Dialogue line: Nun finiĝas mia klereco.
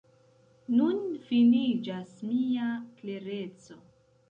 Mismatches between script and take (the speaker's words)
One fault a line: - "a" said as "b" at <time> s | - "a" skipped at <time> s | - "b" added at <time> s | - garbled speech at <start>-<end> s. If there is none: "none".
none